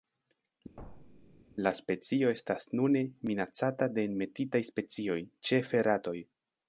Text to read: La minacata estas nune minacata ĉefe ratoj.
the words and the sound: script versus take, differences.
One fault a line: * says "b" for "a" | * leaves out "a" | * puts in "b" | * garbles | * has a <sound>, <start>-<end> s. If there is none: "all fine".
* has a thud, 0.8-1.4 s
* says "specio" for "minacata"
* puts in "de enmetitaj specioj"